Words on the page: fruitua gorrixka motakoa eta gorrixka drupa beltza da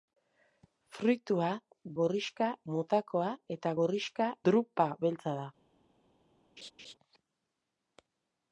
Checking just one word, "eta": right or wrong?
right